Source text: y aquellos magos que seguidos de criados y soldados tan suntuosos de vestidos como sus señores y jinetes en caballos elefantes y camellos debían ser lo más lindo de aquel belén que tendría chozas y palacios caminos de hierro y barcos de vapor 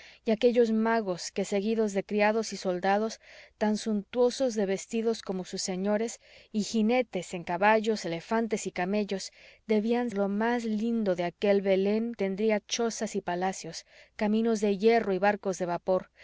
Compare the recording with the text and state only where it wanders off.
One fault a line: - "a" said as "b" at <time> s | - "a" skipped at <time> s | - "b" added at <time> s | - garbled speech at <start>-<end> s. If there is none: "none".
- "ser" skipped at 10.1 s
- "que" skipped at 12.1 s